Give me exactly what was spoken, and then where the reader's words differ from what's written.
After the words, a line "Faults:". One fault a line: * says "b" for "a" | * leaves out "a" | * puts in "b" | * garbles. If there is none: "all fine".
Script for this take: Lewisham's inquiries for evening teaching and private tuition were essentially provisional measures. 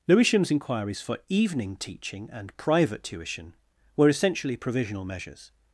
Lewisham's inquiries for evening teaching and private tuition were essentially provisional measures.
Faults:
all fine